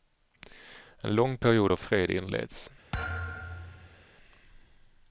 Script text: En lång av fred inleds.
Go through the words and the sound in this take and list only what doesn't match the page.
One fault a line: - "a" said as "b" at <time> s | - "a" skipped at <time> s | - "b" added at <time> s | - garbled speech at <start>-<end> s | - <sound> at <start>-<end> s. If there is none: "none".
- "period" added at 1.4 s
- thud at 2.9-4.0 s